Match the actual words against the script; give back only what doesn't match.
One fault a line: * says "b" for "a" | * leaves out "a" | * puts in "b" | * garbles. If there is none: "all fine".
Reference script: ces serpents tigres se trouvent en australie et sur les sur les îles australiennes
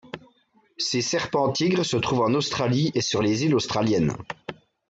* leaves out "sur les"